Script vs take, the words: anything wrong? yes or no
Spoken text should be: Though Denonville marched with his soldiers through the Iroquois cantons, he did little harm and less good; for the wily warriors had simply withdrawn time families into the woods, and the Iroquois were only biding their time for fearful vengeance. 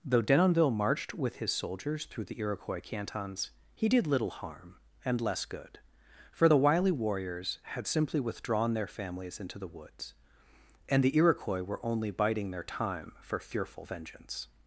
yes